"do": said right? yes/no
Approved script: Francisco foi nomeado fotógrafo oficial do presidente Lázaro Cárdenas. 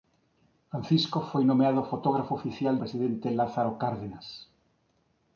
no